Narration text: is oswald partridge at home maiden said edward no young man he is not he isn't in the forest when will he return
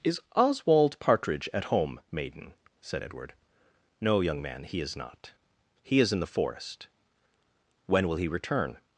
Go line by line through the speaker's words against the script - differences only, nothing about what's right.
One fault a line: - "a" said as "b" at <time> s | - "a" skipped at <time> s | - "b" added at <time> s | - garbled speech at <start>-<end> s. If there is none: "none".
- "isn't" said as "is" at 6.0 s